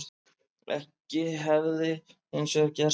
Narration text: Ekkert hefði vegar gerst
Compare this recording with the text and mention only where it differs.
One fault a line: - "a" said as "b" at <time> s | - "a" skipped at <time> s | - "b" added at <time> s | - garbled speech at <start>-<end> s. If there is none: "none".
- "hins" added at 2.3 s